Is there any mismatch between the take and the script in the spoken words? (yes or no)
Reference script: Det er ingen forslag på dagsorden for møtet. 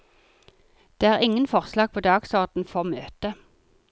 no